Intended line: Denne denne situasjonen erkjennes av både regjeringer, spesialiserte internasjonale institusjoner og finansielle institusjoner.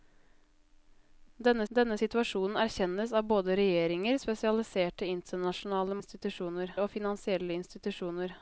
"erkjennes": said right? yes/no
yes